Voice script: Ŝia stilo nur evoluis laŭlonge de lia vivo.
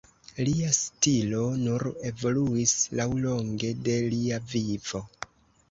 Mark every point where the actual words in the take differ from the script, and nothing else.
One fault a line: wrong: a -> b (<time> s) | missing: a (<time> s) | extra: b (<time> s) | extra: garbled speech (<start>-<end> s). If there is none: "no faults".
wrong: Ŝia -> Lia (0.5 s)